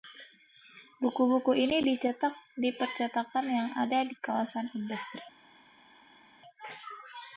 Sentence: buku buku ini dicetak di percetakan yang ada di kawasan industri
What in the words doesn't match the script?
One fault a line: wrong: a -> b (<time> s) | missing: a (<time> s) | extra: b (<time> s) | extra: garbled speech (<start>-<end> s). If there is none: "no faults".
no faults